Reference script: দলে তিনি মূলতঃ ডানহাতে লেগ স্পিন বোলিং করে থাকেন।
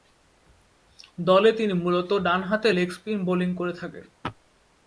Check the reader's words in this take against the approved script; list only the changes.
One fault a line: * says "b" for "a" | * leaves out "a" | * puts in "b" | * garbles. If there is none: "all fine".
all fine